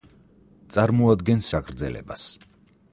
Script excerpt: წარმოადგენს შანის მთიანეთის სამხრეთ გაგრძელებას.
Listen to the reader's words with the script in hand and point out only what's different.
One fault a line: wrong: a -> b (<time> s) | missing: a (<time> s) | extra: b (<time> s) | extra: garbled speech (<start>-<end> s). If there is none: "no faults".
missing: შანის მთიანეთის სამხრეთ (1.5 s)